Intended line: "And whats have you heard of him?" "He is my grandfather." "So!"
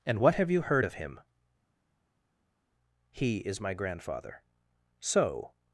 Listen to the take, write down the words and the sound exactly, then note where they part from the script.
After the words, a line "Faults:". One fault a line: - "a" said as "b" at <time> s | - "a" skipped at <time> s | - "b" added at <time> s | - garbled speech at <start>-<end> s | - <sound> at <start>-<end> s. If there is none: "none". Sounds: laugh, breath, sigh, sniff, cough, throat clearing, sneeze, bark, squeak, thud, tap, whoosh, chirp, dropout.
"And what have you heard of him?" "He is my grandfather." "So!"
Faults:
- "whats" said as "what" at 0.2 s